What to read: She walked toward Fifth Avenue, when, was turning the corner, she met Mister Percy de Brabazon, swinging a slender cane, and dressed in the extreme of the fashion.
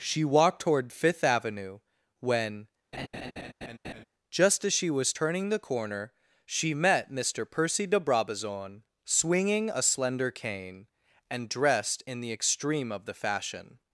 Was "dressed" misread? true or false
false